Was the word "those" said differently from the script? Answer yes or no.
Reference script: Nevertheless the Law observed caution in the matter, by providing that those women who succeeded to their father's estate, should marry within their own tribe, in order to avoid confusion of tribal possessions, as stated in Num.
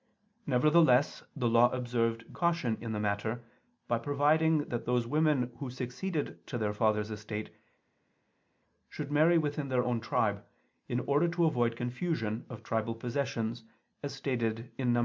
no